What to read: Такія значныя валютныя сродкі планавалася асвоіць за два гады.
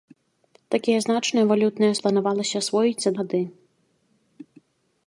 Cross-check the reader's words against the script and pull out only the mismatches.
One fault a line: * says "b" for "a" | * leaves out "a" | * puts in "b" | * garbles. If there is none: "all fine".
* leaves out "сродкі"
* leaves out "два"